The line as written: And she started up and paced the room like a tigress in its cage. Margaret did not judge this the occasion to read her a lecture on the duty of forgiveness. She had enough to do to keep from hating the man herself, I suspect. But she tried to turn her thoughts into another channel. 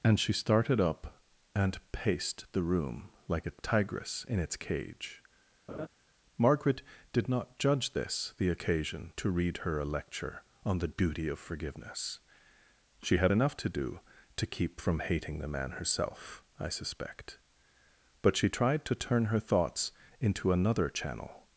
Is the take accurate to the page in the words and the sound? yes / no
no